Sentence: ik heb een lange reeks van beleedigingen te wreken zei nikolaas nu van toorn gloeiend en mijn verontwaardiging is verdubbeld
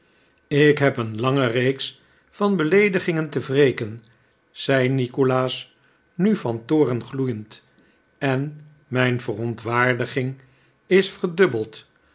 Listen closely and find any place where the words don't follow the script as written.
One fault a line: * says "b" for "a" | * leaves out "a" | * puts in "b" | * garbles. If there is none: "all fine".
all fine